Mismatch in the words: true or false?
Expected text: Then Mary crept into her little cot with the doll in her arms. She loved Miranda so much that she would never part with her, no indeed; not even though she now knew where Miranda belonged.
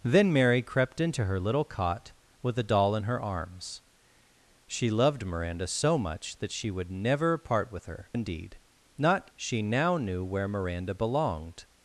true